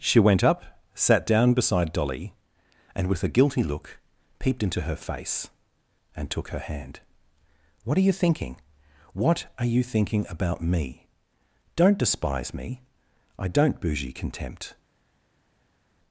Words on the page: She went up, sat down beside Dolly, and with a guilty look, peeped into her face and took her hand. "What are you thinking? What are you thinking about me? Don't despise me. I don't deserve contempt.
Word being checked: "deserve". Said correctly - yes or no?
no